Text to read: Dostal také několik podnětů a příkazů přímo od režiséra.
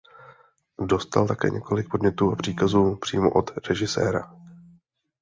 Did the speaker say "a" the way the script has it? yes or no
yes